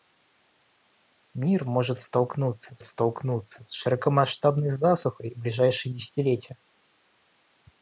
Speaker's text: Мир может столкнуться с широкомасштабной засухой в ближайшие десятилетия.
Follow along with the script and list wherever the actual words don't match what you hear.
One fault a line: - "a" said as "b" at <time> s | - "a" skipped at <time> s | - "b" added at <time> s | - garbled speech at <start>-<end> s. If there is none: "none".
- "столкнуться с" added at 2.8 s